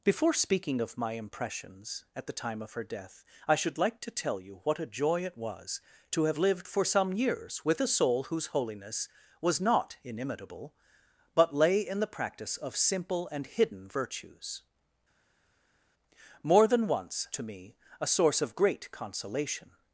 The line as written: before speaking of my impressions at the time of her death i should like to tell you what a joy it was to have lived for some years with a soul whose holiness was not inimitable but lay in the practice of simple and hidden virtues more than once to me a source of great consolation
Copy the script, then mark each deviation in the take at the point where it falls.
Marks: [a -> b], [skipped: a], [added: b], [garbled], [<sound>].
before speaking of my impressions at the time of her death i should like to tell you what a joy it was to have lived for some years with a soul whose holiness was not inimitable but lay in the practice of simple and hidden virtues more than once to me a source of great consolation